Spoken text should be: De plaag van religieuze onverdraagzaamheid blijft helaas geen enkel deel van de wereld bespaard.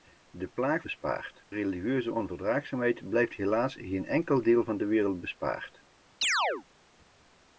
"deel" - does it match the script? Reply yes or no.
yes